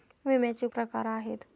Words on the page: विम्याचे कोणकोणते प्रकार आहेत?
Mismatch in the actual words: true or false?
true